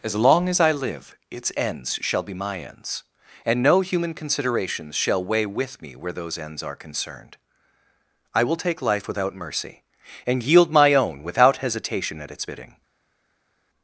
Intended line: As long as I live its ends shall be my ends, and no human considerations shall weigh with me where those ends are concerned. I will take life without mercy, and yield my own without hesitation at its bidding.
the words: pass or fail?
pass